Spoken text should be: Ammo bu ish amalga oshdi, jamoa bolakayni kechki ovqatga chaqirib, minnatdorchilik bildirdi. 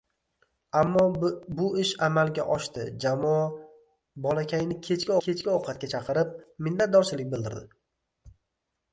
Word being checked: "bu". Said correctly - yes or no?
yes